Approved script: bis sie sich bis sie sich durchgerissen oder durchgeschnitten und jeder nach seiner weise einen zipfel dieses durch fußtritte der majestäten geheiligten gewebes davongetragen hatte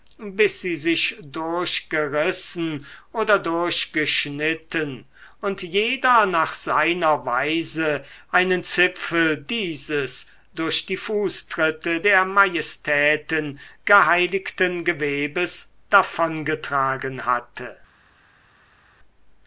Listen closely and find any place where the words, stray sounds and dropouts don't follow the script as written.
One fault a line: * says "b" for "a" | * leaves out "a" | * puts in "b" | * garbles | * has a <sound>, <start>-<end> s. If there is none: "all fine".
* leaves out "bis sie sich"
* puts in "die"